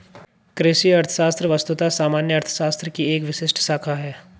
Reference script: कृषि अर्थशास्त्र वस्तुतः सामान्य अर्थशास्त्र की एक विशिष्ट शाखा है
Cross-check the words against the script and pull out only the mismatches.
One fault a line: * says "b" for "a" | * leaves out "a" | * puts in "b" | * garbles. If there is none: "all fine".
all fine